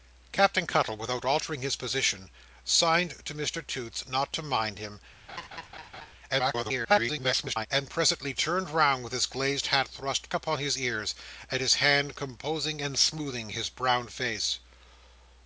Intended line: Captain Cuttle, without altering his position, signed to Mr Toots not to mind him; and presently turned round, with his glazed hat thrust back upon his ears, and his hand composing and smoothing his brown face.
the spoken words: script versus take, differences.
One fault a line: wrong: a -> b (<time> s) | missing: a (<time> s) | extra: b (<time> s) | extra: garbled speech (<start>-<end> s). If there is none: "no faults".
extra: garbled speech (6.3-7.7 s)
missing: back (10.3 s)